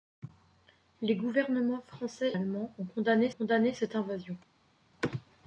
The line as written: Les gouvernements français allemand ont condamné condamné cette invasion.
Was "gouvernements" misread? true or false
false